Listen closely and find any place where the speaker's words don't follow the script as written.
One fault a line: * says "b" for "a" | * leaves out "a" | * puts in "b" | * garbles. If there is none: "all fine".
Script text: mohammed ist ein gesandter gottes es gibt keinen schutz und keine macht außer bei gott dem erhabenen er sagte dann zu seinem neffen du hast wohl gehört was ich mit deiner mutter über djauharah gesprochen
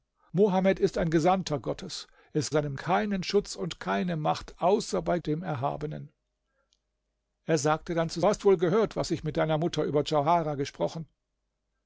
* says "seinem" for "gibt"
* leaves out "gott"
* leaves out "seinem neffen du"